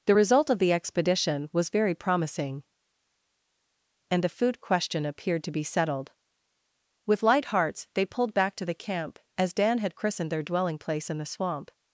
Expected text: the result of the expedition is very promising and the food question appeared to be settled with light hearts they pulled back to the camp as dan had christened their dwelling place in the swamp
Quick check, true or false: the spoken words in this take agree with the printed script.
false